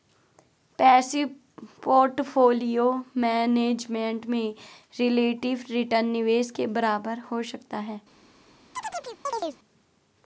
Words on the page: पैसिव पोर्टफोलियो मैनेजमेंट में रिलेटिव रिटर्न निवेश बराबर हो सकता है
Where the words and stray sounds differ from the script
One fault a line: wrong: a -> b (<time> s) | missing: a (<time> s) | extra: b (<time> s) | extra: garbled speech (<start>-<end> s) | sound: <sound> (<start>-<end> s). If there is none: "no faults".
extra: के (6.5 s)
sound: chirp (8.8-9.6 s)